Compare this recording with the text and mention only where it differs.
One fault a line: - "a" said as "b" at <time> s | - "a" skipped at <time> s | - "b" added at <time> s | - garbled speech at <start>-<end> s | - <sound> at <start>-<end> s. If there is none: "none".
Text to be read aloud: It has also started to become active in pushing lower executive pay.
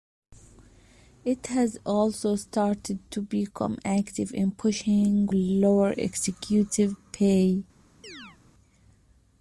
- chirp at 8.0-8.4 s